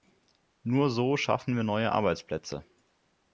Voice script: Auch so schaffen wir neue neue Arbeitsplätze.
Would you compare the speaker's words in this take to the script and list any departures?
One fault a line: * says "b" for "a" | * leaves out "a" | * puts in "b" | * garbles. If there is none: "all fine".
* says "Nur" for "Auch"
* leaves out "neue"